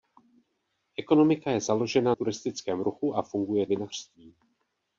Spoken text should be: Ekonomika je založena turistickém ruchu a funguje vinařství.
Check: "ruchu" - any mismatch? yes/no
no